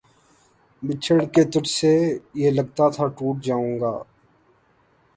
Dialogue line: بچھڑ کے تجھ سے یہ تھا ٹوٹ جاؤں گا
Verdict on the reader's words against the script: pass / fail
fail